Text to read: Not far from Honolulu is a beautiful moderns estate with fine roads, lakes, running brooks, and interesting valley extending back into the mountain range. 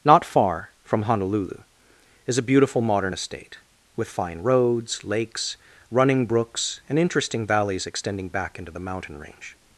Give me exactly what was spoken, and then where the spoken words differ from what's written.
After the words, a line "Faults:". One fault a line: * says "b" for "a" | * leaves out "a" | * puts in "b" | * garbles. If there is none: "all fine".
Not far from Honolulu is a beautiful modern estate with fine roads, lakes, running brooks, and interesting valleys extending back into the mountain range.
Faults:
* says "modern" for "moderns"
* says "valleys" for "valley"